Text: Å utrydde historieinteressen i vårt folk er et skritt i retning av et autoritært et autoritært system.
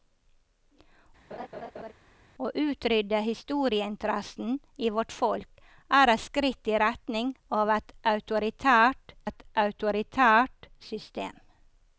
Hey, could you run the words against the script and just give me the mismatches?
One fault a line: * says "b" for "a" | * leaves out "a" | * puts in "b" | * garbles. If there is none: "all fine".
all fine